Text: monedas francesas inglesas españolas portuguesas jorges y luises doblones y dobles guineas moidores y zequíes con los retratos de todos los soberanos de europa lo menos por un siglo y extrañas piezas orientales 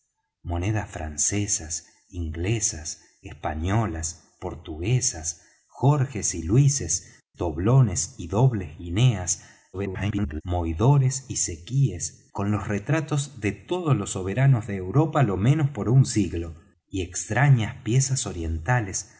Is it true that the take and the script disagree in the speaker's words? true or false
true